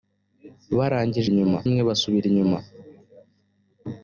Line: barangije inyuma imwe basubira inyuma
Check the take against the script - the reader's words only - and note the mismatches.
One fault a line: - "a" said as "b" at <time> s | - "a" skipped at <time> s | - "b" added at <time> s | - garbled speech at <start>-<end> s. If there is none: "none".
none